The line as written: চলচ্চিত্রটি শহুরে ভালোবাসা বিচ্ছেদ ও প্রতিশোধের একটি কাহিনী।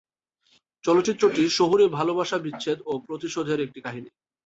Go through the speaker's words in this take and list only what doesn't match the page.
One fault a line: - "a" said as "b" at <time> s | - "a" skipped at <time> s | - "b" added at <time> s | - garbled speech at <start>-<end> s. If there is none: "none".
none